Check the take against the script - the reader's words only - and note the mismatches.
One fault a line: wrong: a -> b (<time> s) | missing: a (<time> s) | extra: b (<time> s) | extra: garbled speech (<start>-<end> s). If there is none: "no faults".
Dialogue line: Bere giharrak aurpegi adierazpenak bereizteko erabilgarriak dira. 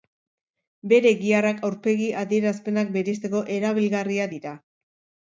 no faults